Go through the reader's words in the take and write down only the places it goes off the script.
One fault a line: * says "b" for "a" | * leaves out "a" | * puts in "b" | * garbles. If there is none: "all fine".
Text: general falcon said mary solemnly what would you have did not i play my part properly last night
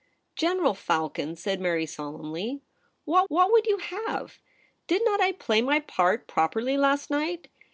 * puts in "what"